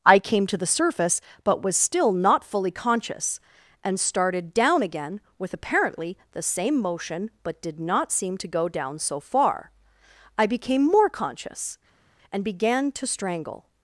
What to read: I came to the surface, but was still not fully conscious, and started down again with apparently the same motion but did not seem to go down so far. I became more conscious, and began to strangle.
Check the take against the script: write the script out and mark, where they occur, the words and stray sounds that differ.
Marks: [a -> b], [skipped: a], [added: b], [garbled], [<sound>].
I came to the surface, but was still not fully conscious, and started down again with apparently the same motion but did not seem to go down so far. I became more conscious, and began to strangle.